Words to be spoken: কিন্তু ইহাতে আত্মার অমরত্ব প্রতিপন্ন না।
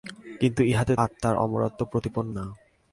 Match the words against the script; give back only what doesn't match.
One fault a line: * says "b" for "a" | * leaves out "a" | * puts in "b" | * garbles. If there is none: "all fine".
all fine